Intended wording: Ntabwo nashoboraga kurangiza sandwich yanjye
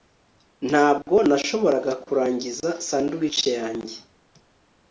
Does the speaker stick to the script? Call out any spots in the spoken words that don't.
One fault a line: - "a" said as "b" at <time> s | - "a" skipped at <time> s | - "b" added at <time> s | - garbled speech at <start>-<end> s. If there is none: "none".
none